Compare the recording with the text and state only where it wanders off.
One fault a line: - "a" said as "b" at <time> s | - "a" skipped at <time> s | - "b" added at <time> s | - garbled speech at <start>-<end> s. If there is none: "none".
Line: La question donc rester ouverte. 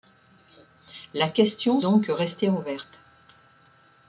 none